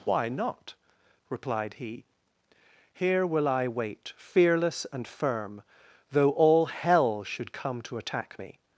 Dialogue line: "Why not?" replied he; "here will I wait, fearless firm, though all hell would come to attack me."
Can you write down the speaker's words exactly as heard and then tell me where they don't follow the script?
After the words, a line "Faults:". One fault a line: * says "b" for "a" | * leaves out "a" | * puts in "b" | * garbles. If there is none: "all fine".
"Why not?" replied he; "here will I wait, fearless and firm, though all hell should come to attack me."
Faults:
* puts in "and"
* says "should" for "would"